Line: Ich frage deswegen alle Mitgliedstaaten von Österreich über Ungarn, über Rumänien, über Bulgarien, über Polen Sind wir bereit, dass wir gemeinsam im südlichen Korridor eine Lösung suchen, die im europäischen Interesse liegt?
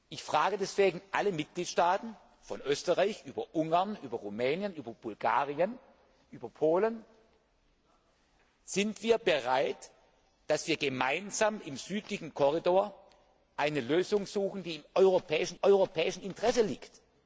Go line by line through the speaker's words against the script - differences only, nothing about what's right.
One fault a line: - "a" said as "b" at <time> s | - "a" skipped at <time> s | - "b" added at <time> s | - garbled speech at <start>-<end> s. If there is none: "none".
- "europäischen" added at 15.6 s